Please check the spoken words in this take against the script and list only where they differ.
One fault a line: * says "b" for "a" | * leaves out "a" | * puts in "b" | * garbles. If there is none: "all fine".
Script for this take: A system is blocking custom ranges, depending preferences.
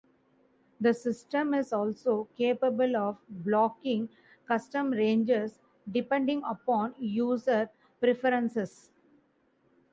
* says "The" for "A"
* puts in "also capable of"
* puts in "upon user"